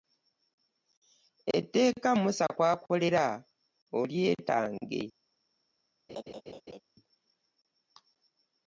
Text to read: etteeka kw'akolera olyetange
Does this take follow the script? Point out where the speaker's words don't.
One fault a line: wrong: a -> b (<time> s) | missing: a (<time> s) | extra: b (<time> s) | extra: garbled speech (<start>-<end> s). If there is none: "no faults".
extra: musa (2.2 s)